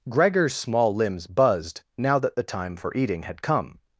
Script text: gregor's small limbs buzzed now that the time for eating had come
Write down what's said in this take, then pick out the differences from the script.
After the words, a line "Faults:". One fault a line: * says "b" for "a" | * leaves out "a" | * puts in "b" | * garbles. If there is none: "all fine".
gregor's small limbs buzzed now that the time for eating had come
Faults:
all fine